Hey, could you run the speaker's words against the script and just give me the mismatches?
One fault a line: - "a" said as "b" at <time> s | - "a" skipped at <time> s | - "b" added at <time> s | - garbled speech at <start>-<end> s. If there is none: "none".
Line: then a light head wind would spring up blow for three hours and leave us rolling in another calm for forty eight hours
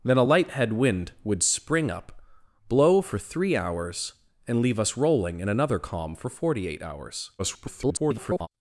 - garbled speech at 7.4-8.5 s